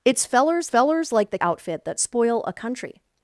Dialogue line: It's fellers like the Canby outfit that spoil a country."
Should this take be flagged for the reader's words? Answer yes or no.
yes